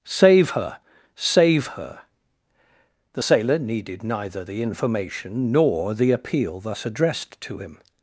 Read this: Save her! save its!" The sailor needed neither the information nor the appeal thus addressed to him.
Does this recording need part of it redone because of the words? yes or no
yes